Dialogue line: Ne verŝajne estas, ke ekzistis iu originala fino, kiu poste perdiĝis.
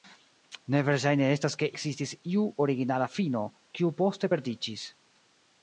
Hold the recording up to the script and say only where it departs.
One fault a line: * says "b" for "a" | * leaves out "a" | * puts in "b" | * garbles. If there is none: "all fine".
all fine